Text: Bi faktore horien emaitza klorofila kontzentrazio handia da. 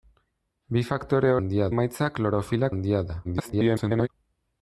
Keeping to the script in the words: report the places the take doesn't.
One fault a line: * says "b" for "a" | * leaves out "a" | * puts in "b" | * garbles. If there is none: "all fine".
* says "handia" for "horien"
* leaves out "kontzentrazio"
* garbles